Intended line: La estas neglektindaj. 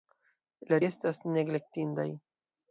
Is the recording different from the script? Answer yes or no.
no